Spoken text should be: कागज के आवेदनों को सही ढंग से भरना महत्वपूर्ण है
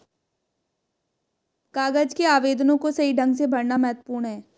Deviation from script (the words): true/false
false